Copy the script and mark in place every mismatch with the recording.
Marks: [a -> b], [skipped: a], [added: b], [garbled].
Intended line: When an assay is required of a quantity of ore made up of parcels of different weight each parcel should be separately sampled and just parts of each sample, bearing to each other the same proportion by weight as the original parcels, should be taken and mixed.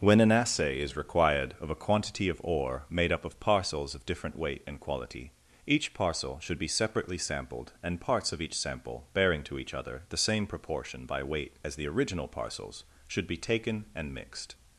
When an assay is required of a quantity of ore made up of parcels of different weight [added: and quality] each parcel should be separately sampled and [skipped: just] parts of each sample, bearing to each other the same proportion by weight as the original parcels, should be taken and mixed.